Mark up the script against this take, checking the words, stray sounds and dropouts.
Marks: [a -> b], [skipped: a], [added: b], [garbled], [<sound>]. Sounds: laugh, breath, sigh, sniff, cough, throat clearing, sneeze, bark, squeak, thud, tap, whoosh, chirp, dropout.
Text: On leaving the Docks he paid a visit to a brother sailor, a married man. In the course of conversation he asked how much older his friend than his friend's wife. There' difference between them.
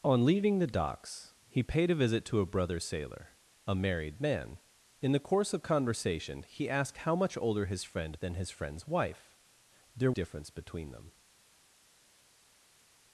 On leaving the Docks he paid a visit to a brother sailor, a married man. In the course of conversation he asked how much older his friend than his friend's wife. There' difference between them.